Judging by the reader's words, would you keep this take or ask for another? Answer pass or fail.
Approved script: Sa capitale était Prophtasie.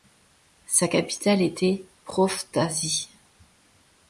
pass